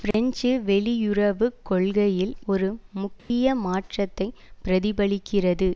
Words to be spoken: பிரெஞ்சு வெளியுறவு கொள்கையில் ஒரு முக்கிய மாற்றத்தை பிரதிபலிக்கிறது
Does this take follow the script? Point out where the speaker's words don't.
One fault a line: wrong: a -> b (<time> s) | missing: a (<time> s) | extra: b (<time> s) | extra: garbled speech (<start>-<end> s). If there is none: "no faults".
no faults